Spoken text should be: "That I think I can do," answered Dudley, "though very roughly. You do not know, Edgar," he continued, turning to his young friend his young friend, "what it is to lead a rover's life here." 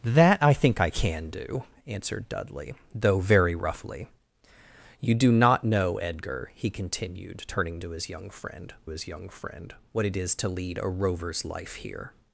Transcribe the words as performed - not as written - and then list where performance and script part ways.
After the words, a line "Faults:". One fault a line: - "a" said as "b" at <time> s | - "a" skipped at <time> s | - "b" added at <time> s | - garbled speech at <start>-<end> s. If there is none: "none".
"That I think I can do," answered Dudley, "though very roughly. You do not know, Edgar," he continued, turning to his young friend his young friend, "what it is to lead a rover's life here."
Faults:
none